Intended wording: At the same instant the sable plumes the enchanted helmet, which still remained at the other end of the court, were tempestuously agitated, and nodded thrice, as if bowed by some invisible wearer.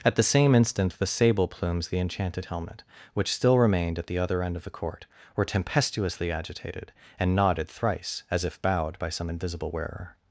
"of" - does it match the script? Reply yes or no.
yes